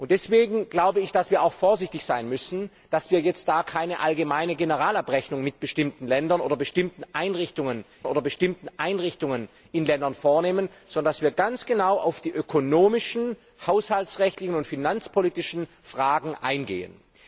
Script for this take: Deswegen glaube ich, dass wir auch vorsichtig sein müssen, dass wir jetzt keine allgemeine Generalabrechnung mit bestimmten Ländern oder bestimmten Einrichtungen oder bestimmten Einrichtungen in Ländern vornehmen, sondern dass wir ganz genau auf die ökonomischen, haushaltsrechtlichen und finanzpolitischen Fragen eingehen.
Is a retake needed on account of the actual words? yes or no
no